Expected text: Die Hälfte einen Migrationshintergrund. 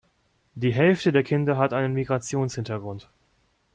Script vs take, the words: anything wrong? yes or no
yes